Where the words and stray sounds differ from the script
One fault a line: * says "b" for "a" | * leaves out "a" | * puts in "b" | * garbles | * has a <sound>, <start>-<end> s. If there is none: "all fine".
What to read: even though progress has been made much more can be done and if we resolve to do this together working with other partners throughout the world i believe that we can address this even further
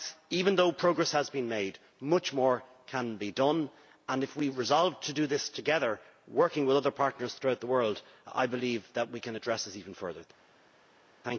all fine